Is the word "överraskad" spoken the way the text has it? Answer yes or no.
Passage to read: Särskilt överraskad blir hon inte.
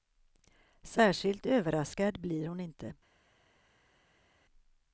yes